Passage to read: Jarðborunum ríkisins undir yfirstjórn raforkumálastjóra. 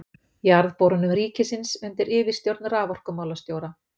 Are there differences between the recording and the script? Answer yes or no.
no